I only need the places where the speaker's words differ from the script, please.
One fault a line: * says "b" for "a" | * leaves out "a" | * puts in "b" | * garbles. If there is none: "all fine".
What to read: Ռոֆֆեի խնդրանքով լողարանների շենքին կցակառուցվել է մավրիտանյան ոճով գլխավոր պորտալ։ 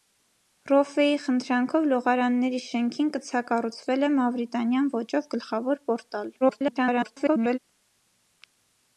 * garbles